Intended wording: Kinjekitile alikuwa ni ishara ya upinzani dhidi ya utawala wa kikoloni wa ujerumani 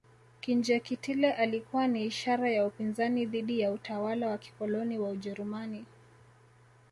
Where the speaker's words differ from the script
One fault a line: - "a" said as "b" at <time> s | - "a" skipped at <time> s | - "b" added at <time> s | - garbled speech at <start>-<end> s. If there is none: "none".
none